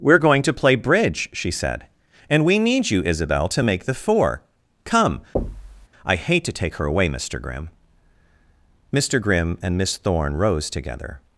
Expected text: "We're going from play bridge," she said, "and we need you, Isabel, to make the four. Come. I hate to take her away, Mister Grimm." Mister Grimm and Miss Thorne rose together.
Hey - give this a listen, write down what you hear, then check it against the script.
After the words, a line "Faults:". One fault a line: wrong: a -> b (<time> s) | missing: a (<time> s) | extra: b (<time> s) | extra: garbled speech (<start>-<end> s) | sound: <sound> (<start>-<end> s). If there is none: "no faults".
"We're going to play bridge," she said, "and we need you, Isabel, to make the four. Come. I hate to take her away, Mister Grimm." Mister Grimm and Miss Thorne rose together.
Faults:
wrong: from -> to (0.4 s)
sound: thud (5.4-5.9 s)